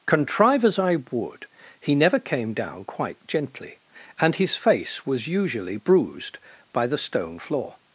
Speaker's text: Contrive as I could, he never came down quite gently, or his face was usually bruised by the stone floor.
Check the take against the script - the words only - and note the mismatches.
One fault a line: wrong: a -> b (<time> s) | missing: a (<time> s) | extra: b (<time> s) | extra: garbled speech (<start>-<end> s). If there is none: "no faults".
wrong: could -> would (1.1 s)
wrong: or -> and (4.2 s)